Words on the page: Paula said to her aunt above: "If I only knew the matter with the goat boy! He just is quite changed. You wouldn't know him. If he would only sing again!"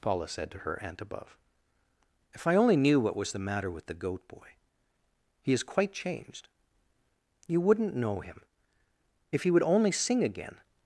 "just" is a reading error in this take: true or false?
true